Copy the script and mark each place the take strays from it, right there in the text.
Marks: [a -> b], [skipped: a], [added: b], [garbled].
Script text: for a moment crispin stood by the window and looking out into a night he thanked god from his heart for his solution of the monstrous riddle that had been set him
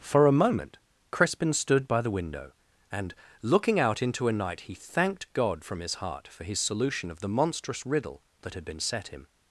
for a moment crispin stood by the window and looking out into a night he thanked god from his heart for his solution of the monstrous riddle that had been set him